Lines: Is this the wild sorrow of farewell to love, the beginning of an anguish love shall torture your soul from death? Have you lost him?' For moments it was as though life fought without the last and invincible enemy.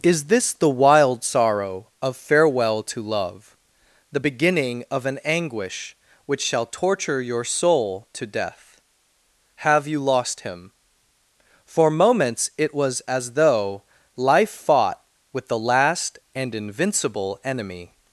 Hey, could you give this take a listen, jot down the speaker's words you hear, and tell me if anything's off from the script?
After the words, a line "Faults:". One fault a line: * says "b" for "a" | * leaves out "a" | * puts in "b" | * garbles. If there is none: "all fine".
Is this the wild sorrow of farewell to love, the beginning of an anguish which shall torture your soul to death? Have you lost him?' For moments it was as though life fought with the last and invincible enemy.
Faults:
* says "which" for "love"
* says "to" for "from"
* says "with" for "without"